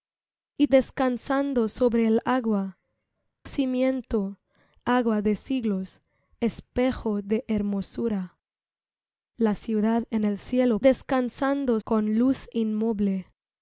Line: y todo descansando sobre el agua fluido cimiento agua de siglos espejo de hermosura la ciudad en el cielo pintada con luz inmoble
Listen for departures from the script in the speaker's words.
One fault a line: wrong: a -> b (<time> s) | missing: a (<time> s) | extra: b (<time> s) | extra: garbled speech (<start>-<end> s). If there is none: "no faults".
missing: todo (0.7 s)
missing: fluido (2.8 s)
wrong: pintada -> descansando (10.8 s)